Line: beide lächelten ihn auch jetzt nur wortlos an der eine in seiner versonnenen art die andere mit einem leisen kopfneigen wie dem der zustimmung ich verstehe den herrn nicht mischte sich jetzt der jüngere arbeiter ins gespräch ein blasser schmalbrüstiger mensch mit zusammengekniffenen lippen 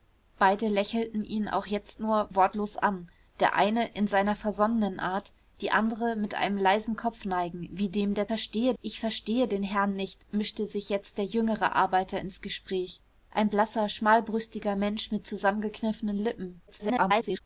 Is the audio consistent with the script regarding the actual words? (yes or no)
no